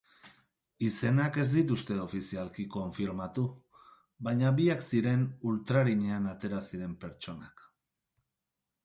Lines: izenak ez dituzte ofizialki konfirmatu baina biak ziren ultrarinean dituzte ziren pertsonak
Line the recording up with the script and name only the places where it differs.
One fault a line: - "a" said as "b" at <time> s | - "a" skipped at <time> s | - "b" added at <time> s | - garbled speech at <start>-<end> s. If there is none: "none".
- "dituzte" said as "atera" at 6.3 s